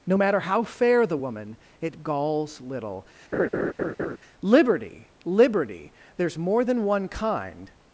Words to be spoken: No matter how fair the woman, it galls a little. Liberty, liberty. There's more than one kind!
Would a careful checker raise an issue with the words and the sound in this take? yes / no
yes